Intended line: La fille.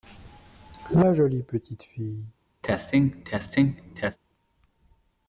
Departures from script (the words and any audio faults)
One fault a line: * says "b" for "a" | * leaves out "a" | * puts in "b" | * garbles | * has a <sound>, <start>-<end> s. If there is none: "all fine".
* puts in "jolie petite"
* has a cough, 2.6-4.2 s